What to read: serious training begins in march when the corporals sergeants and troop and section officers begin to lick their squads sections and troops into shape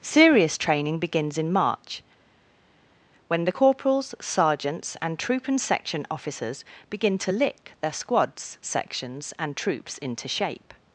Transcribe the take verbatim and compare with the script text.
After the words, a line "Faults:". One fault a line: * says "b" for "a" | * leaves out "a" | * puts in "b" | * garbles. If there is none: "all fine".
serious training begins in march when the corporals sergeants and troop and section officers begin to lick their squads sections and troops into shape
Faults:
all fine